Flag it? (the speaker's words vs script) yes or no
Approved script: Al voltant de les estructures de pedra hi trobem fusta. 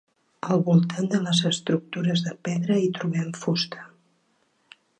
no